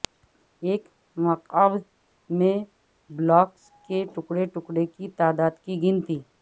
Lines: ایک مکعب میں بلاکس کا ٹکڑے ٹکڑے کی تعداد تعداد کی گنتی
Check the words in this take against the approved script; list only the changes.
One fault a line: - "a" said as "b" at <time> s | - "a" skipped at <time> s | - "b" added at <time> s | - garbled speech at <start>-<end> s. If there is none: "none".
- "کا" said as "کے" at 3.9 s
- "تعداد" skipped at 5.5 s